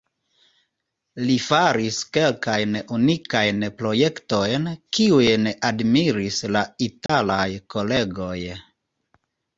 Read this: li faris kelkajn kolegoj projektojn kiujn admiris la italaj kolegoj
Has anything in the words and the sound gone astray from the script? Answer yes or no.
yes